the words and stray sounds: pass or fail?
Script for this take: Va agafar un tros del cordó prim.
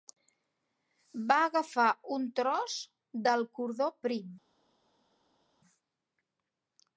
pass